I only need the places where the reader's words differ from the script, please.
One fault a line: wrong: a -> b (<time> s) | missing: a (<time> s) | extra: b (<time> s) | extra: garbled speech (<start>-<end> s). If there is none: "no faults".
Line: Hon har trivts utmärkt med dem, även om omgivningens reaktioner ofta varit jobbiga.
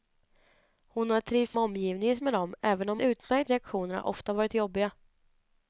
wrong: utmärkt -> omgivningens (1.6 s)
wrong: omgivningens -> utmärkt (3.0 s)